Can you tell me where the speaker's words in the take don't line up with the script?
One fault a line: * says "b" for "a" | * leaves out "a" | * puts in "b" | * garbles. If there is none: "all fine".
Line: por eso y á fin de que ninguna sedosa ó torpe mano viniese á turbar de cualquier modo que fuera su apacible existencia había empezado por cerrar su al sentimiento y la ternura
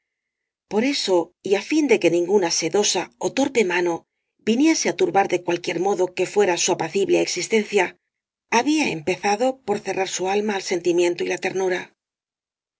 * puts in "alma"